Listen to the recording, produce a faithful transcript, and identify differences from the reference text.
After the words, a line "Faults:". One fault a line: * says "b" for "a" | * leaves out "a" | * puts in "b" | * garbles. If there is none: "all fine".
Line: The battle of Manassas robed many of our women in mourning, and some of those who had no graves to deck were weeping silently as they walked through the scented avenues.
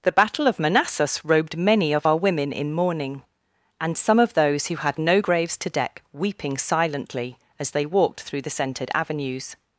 The battle of Manassas robed many of our women in mourning, and some of those who had no graves to deck weeping silently as they walked through the scented avenues.
Faults:
* leaves out "were"